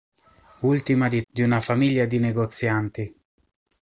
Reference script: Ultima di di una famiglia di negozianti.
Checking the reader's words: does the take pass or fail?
pass